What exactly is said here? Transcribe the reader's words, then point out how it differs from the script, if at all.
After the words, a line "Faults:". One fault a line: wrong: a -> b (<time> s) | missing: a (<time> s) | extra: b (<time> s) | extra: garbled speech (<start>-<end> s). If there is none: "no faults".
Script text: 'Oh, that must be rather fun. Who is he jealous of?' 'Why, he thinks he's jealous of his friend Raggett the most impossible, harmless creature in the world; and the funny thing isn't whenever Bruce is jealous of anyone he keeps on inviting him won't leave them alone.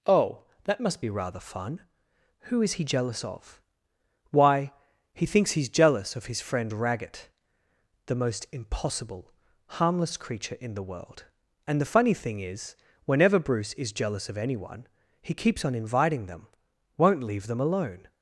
'Oh, that must be rather fun. Who is he jealous of?' 'Why, he thinks he's jealous of his friend Raggett the most impossible, harmless creature in the world; and the funny thing is whenever Bruce is jealous of anyone he keeps on inviting them won't leave them alone.
Faults:
wrong: isn't -> is (12.4 s)
wrong: him -> them (16.3 s)